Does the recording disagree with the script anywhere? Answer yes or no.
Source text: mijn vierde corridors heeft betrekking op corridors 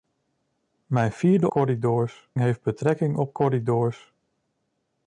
no